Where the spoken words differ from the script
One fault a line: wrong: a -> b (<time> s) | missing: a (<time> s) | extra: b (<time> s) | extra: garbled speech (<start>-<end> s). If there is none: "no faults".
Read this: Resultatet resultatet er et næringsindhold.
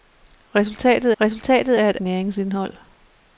no faults